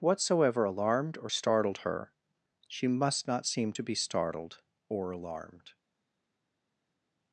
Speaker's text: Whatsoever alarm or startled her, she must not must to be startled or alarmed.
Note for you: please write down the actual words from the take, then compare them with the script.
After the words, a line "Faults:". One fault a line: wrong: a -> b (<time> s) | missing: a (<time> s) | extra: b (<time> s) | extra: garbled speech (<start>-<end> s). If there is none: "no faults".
Whatsoever alarmed or startled her, she must not seem to be startled or alarmed.
Faults:
wrong: alarm -> alarmed (0.6 s)
wrong: must -> seem (3.5 s)